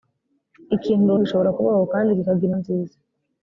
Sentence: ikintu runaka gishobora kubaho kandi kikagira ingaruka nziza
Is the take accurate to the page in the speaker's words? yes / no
no